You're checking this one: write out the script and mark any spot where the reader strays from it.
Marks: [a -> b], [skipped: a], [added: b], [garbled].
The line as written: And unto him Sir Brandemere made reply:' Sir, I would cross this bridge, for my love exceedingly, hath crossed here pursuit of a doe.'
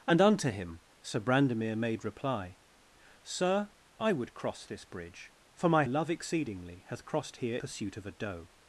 And unto him Sir Brandemere made reply:' Sir, I would cross this bridge, for my love exceedingly, hath crossed here pursuit of a doe.'